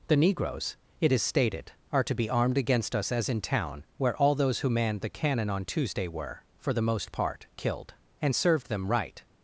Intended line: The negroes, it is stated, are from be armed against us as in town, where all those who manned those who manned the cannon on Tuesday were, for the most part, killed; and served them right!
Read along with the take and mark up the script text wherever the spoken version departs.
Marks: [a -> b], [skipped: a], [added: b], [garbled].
The negroes, it is stated, are [from -> to] be armed against us as in town, where all those who manned [skipped: those who manned] the cannon on Tuesday were, for the most part, killed; and served them right!